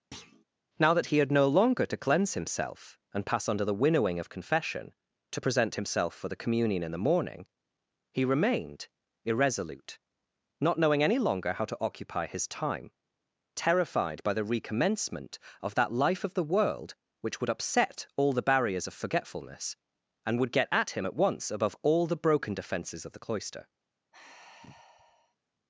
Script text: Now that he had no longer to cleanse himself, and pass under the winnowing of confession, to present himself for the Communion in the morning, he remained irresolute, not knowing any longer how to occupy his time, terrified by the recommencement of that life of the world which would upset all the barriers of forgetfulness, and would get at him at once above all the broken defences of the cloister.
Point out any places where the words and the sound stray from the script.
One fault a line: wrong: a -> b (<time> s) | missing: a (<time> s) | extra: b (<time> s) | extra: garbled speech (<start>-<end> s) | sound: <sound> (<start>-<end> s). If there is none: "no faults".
sound: thud (0.1-0.4 s)
sound: sigh (24.1-25.4 s)